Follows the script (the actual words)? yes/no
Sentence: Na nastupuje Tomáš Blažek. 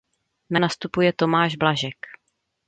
yes